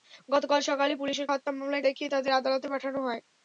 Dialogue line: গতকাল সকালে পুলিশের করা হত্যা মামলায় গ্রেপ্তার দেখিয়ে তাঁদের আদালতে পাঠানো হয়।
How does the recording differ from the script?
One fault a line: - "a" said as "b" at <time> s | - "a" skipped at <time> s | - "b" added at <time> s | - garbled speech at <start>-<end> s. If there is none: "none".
- "করা" skipped at 1.3 s
- "গ্রেপ্তার" skipped at 1.8 s